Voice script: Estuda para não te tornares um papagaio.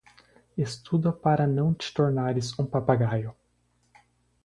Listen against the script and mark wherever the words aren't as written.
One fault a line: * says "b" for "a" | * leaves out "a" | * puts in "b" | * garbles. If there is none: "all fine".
all fine